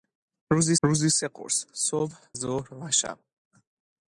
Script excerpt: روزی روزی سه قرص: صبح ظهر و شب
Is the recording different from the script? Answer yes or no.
no